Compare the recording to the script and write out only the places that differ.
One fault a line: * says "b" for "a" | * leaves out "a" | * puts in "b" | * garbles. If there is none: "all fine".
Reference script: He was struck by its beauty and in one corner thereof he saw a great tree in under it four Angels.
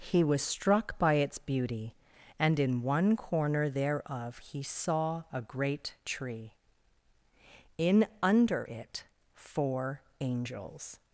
all fine